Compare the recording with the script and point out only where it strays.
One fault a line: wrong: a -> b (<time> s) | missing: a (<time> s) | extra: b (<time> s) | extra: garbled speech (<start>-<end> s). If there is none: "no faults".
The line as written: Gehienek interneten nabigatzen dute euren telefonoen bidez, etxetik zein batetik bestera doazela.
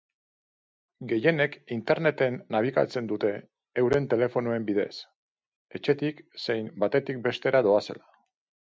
no faults